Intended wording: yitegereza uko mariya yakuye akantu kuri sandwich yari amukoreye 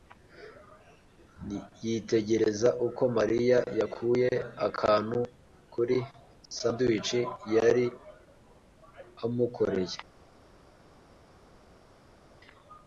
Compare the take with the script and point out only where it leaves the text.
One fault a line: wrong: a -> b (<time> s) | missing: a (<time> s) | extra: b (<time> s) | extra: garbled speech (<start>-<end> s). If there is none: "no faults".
no faults